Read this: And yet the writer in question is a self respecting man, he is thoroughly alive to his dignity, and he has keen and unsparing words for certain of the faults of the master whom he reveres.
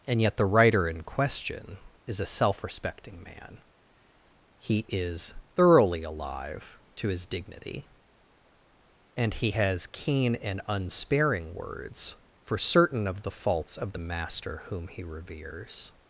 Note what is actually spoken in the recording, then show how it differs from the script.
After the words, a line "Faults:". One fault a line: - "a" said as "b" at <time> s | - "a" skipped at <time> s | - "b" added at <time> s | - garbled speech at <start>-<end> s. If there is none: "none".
And yet the writer in question is a self respecting man, he is thoroughly alive to his dignity, and he has keen and unsparing words for certain of the faults of the master whom he reveres.
Faults:
none